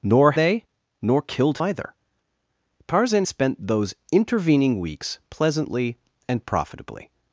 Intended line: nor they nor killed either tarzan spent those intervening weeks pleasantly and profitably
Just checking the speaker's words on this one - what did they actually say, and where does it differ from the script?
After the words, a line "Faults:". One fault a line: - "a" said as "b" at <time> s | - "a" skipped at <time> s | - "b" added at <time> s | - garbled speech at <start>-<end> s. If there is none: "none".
nor they nor killed either tarzan spent those intervening weeks pleasantly and profitably
Faults:
none